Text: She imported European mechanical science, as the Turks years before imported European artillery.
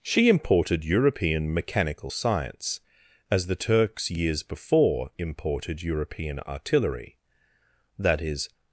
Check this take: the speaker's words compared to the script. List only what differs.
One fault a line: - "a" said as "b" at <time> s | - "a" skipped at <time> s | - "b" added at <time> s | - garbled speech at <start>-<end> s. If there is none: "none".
- "That is" added at 8.0 s